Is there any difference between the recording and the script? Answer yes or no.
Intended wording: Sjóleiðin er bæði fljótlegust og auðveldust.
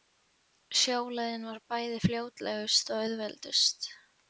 yes